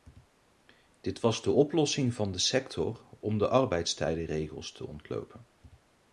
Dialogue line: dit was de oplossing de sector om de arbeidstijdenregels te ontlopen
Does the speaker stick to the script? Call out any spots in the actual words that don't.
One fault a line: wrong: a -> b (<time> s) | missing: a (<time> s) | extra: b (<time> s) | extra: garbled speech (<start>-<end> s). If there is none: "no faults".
extra: van (2.1 s)